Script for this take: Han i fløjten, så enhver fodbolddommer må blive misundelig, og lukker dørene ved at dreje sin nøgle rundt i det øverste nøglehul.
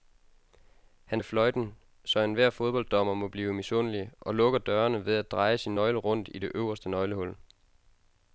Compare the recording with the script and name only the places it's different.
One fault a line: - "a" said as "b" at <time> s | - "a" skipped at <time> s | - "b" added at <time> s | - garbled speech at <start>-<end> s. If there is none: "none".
none